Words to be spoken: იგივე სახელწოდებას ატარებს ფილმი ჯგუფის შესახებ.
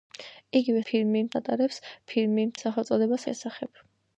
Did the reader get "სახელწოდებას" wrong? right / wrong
wrong